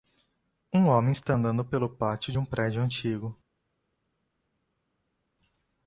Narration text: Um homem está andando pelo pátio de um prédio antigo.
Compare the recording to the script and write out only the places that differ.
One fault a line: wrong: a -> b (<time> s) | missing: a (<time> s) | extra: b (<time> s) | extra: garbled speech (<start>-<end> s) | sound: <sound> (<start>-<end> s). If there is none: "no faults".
no faults